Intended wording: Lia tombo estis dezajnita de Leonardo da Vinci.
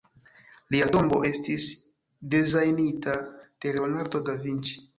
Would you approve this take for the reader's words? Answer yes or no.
yes